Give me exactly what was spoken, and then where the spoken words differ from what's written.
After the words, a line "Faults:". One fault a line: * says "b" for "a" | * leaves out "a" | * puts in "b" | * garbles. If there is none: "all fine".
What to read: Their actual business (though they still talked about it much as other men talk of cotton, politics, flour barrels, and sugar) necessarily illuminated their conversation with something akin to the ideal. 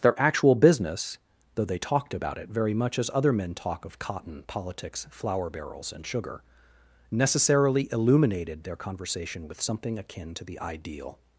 Their actual business (though they talked about it very much as other men talk of cotton, politics, flour barrels, and sugar) necessarily illuminated their conversation with something akin to the ideal.
Faults:
* leaves out "still"
* puts in "very"